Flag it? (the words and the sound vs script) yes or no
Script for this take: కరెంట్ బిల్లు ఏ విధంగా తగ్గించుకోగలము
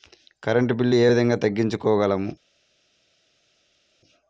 no